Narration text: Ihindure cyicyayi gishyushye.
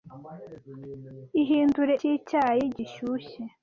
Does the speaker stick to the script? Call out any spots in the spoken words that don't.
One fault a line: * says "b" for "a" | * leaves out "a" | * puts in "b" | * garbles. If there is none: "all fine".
all fine